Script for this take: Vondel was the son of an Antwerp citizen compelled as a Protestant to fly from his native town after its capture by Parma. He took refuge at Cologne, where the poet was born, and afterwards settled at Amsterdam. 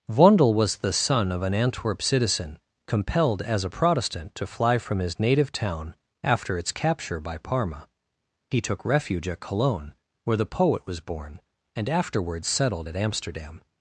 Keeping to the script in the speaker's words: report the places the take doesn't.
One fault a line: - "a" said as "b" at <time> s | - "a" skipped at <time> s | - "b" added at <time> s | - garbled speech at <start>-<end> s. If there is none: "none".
none